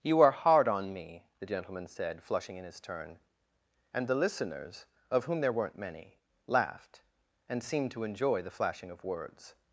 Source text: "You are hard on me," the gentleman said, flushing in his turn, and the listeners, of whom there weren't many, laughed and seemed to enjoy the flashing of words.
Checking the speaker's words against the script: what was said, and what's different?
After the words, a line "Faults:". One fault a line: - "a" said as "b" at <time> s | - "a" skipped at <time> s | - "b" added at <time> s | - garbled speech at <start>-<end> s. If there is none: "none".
"You are hard on me," the gentleman said, flushing in his turn, and the listeners, of whom there weren't many, laughed and seemed to enjoy the flashing of words.
Faults:
none